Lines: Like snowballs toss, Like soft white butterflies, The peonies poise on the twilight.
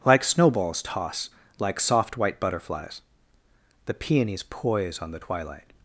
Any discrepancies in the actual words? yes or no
no